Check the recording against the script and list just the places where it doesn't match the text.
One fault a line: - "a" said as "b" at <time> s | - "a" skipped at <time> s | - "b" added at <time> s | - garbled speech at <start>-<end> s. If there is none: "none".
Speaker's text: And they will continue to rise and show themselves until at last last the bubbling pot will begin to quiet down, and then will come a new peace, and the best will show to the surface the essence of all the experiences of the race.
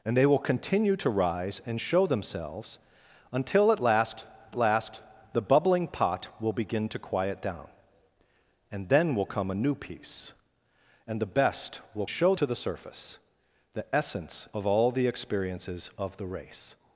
none